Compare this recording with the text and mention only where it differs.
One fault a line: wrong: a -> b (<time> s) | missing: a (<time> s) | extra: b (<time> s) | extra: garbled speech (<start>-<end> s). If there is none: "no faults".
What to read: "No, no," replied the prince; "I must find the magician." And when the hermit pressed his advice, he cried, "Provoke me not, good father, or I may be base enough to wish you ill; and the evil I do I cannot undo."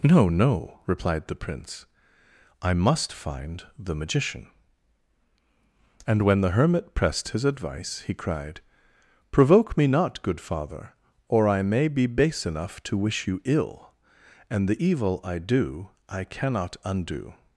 no faults